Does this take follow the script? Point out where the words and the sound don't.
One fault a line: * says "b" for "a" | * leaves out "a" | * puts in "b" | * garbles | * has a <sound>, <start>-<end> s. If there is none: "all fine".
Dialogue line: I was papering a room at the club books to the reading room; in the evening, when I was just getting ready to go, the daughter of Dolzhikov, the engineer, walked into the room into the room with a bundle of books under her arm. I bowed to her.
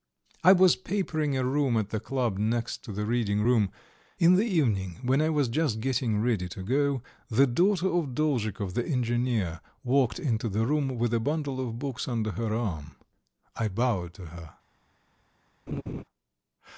* says "next" for "books"
* leaves out "into the room"
* has a laugh, 15.7-16.0 s